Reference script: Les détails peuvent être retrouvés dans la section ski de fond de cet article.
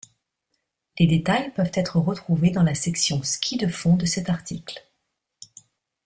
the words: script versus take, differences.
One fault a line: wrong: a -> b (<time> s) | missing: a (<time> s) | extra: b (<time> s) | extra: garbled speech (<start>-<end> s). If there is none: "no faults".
no faults